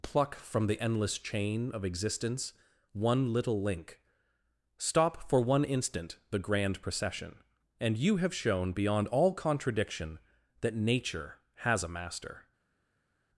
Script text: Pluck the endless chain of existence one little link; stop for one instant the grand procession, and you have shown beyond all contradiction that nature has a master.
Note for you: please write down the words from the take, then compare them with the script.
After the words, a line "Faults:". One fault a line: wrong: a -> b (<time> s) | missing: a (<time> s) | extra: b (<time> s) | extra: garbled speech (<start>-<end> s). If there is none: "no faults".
Pluck from the endless chain of existence one little link; stop for one instant the grand procession, and you have shown beyond all contradiction that nature has a master.
Faults:
extra: from (0.3 s)